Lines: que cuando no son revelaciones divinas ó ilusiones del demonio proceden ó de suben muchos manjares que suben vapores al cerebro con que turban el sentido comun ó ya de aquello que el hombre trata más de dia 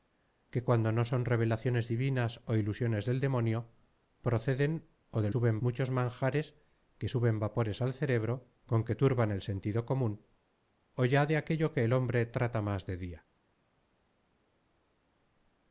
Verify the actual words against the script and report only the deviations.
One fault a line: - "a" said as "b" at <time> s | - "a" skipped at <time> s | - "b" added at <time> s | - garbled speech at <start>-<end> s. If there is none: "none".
none